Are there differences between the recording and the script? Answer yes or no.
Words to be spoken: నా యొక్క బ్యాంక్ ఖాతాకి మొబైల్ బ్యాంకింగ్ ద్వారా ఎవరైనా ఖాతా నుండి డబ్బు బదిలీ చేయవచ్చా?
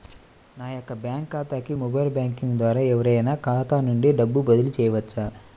no